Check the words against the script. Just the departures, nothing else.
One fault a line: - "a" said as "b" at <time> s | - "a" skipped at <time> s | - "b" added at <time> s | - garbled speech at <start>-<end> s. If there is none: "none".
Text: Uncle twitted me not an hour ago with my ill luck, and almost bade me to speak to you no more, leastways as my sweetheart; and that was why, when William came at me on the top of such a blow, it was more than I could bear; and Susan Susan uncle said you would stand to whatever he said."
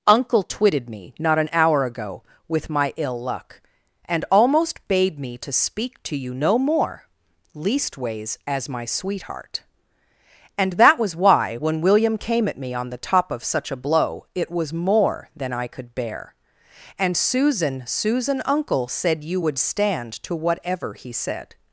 none